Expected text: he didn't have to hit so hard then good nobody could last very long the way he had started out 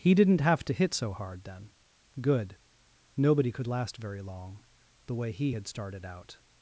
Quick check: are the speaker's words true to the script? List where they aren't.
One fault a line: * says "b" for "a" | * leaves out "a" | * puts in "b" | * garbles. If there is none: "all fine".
all fine